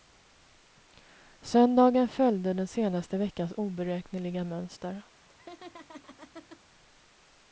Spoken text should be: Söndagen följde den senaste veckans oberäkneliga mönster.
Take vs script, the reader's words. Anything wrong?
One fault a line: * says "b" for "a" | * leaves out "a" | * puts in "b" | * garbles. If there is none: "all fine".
all fine